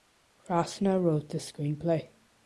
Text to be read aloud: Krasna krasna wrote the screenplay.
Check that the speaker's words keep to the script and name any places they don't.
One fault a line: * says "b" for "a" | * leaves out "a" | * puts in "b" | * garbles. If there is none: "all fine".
* leaves out "krasna"